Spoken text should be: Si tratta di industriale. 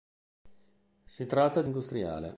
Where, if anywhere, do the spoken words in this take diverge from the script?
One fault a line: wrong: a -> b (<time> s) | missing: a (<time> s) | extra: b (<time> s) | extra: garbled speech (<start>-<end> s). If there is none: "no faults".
no faults